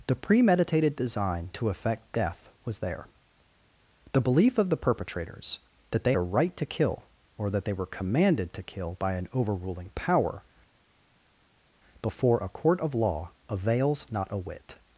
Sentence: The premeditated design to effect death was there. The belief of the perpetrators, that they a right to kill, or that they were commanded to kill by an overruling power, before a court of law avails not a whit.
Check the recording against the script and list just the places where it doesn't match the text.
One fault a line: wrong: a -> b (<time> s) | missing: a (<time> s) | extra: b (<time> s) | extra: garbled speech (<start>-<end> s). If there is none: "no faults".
no faults